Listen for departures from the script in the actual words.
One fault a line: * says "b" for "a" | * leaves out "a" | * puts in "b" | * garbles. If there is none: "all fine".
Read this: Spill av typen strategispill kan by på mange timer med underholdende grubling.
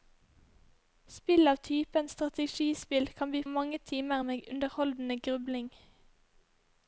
* leaves out "på"